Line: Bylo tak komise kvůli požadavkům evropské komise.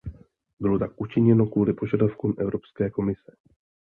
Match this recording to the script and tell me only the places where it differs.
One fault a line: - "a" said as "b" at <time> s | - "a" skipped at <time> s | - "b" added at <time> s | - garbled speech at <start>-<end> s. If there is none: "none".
- "komise" said as "učiněno" at 1.0 s